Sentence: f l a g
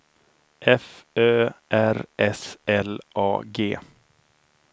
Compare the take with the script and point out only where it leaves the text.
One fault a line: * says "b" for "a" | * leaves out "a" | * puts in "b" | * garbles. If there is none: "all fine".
* puts in "ö r s"